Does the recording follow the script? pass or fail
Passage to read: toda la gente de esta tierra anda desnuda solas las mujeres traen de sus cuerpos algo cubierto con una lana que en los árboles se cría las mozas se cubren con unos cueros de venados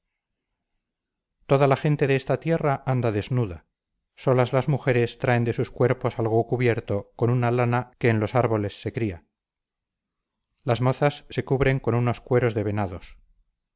pass